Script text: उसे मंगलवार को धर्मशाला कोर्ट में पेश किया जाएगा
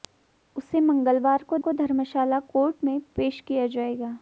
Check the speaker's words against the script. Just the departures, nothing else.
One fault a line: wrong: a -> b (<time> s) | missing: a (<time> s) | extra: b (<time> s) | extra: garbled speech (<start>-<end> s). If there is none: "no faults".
extra: को (1.6 s)